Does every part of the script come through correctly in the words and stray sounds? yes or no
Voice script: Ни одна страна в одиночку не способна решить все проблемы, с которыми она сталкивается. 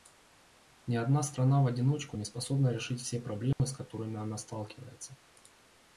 no